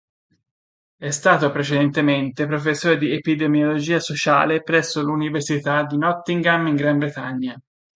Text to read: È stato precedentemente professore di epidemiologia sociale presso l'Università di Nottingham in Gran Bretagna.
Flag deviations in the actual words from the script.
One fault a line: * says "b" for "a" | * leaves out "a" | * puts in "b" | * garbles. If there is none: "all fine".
all fine